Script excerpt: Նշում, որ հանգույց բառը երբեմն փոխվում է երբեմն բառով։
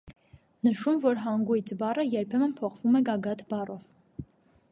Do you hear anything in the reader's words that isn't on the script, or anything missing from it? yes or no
yes